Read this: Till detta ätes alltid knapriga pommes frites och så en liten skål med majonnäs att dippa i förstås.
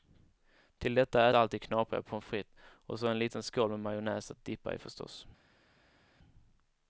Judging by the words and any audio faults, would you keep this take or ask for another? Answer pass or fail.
fail